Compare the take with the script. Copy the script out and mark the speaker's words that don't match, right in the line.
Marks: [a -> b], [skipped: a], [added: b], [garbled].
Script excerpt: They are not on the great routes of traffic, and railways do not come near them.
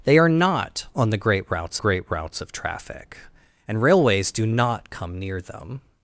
They are not on the great routes [added: great routes] of traffic, and railways do not come near them.